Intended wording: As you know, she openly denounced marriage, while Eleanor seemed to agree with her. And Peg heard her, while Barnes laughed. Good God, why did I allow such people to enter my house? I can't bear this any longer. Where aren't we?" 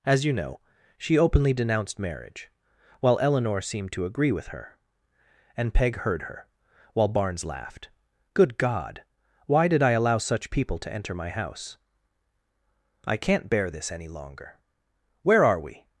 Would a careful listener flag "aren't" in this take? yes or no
yes